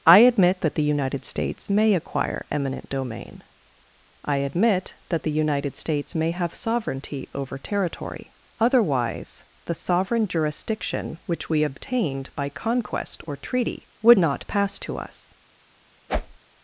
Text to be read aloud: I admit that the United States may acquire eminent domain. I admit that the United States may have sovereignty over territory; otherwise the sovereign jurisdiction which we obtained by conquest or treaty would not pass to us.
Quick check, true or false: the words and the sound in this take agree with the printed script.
false